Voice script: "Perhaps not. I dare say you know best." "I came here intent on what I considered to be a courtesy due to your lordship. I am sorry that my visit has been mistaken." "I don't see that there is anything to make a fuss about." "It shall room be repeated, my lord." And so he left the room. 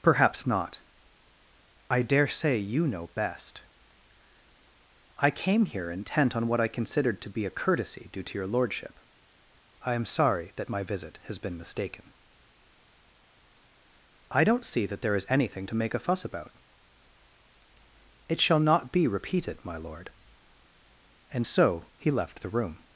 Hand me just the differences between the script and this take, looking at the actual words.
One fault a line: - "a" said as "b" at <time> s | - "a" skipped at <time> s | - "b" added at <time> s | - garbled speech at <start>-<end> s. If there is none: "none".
- "room" said as "not" at 18.6 s